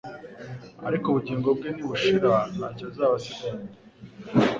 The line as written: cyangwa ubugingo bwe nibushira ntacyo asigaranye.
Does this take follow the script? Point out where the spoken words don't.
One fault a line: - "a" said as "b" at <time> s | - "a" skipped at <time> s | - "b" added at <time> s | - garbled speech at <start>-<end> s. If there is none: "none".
- "cyangwa" said as "ariko" at 0.9 s
- "azaba" added at 2.9 s